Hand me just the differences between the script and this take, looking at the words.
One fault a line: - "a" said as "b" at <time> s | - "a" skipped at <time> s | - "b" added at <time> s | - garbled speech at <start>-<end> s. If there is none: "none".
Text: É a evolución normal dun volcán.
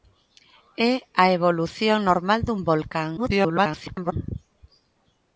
- garbled speech at 3.2-4.1 s